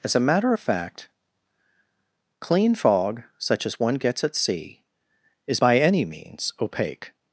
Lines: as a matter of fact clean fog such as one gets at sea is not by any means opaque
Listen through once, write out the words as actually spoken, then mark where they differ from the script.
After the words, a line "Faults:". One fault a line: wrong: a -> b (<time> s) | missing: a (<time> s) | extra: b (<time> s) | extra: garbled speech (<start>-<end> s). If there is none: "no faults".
as a matter of fact clean fog such as one gets at sea is by any means opaque
Faults:
missing: not (5.6 s)